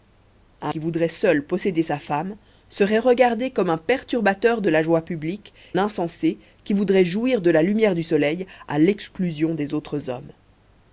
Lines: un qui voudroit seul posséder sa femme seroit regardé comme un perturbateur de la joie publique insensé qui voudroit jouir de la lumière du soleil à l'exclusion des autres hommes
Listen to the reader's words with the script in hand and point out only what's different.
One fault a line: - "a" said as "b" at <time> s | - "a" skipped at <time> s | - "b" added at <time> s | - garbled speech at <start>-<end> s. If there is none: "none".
none